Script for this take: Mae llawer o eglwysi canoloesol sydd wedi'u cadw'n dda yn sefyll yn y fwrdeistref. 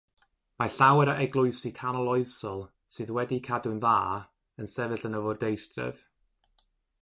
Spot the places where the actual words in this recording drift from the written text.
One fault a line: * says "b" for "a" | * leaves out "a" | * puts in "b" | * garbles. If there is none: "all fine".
all fine